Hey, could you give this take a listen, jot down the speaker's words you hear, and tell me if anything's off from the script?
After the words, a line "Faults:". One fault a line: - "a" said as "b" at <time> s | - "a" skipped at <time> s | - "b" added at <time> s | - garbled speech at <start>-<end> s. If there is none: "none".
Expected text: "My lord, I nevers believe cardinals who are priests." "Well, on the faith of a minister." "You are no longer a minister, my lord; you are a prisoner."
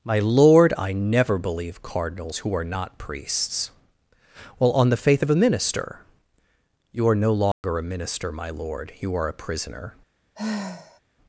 "My lord, I never believe cardinals who are not priests." "Well, on the faith of a minister." "You are no longer a minister, my lord; you are a prisoner."
Faults:
- "nevers" said as "never" at 0.9 s
- "not" added at 2.6 s